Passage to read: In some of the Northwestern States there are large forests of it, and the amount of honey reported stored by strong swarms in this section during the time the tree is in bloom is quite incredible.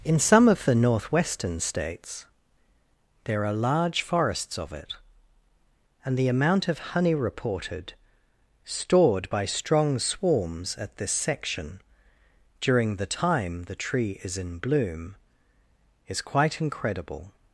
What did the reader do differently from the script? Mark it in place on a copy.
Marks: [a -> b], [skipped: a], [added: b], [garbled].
In some of the Northwestern States there are large forests of it, and the amount of honey reported stored by strong swarms [in -> at] this section during the time the tree is in bloom is quite incredible.